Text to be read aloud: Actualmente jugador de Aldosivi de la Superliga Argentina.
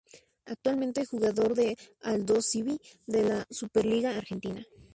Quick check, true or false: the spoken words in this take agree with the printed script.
true